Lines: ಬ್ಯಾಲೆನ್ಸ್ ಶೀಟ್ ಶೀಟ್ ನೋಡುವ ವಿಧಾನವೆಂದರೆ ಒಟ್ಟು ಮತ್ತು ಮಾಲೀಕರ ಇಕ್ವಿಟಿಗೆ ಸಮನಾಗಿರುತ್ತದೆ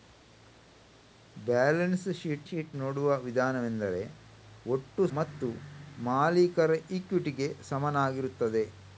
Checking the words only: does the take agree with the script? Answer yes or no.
yes